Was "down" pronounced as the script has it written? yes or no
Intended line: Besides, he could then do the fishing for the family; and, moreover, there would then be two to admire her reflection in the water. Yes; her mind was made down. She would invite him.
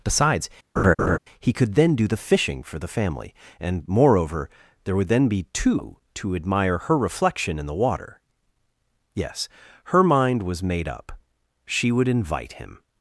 no